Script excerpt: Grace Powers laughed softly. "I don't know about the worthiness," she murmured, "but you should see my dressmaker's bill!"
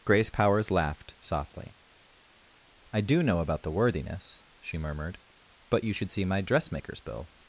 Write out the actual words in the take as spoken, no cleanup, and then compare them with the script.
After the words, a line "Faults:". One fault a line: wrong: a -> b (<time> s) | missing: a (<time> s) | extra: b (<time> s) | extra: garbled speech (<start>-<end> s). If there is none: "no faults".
Grace Powers laughed softly. "I do know about the worthiness," she murmured, "but you should see my dressmaker's bill!"
Faults:
wrong: don't -> do (3.0 s)